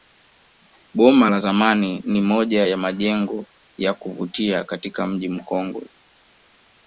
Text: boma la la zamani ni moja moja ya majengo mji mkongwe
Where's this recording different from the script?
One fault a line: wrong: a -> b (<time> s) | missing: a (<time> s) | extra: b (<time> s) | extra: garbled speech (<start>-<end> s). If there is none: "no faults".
missing: la (1.4 s)
wrong: moja -> ya majengo (2.7 s)
wrong: majengo -> kuvutia katika (3.9 s)